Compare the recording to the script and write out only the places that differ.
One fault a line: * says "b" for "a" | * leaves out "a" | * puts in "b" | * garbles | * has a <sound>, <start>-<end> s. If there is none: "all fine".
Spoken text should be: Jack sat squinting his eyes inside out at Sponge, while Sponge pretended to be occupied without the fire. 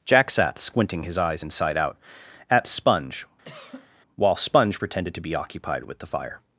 * has a cough, 3.4-3.9 s
* says "with" for "without"